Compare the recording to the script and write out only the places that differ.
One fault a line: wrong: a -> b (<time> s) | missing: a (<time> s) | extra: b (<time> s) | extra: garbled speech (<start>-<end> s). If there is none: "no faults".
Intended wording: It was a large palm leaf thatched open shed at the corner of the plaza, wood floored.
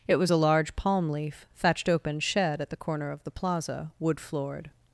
no faults